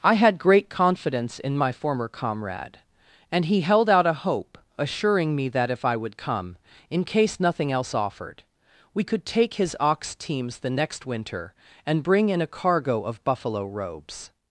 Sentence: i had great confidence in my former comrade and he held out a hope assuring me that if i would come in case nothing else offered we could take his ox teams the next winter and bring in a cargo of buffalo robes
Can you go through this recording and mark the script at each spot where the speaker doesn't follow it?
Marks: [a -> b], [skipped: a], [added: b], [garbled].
i had great confidence in my former comrade and he held out a hope assuring me that if i would come in case nothing else offered we could take his ox teams the next winter and bring in a cargo of buffalo robes